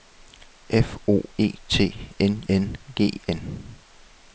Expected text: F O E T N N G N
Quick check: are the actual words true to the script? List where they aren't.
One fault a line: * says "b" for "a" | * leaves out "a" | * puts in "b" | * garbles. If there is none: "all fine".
all fine